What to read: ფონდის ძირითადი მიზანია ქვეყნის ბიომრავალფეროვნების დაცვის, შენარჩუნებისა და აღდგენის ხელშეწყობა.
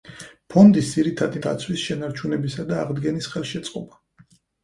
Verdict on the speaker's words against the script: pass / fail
fail